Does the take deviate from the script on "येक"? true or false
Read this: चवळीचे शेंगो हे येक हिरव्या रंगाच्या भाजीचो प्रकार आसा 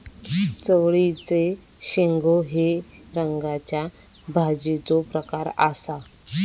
true